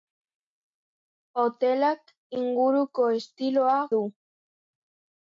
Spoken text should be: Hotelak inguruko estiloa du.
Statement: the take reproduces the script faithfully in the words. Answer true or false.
true